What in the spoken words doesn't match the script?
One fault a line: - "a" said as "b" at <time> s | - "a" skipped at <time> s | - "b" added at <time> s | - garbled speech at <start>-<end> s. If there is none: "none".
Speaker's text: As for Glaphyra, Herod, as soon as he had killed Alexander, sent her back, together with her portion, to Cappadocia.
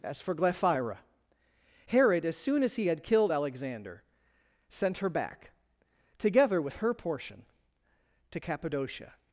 none